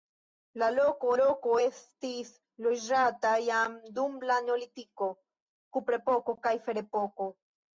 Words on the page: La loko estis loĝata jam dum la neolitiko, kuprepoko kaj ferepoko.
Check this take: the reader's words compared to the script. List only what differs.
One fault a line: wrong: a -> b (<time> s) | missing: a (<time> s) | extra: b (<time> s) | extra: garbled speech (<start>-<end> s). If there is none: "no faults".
extra: loko (1.2 s)